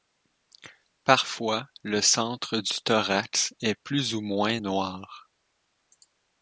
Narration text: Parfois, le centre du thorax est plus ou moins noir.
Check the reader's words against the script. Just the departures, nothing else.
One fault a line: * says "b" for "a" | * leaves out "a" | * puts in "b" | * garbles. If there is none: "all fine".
all fine